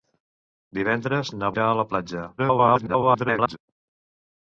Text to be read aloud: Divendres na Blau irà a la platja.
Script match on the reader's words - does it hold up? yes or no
no